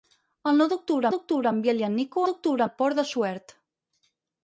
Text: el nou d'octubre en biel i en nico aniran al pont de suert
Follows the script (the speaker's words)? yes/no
no